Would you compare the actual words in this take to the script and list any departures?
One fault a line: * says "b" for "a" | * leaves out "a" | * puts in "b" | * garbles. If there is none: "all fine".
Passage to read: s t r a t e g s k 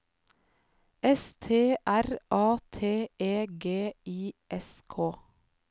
* puts in "i"